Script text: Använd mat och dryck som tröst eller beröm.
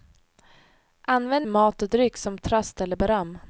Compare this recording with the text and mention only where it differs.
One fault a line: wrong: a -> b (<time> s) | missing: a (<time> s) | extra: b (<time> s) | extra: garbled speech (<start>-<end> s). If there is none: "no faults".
no faults